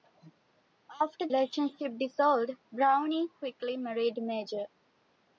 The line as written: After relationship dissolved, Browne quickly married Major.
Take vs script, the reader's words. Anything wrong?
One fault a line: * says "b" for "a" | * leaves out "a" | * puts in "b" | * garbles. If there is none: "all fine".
all fine